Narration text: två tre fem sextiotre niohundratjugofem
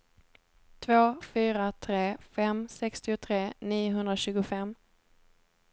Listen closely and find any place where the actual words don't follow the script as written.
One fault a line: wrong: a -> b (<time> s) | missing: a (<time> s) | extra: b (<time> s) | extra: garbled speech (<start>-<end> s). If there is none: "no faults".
extra: fyra (1.2 s)